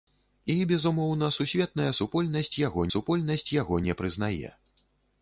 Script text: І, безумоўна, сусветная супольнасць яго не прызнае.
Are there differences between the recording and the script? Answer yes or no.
yes